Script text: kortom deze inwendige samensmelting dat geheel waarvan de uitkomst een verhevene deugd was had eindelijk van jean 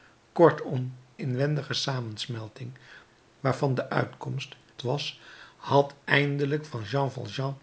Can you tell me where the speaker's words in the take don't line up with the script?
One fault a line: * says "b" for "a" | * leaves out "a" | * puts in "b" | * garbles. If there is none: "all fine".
* leaves out "deze"
* leaves out "dat geheel"
* leaves out "een verhevene deugd"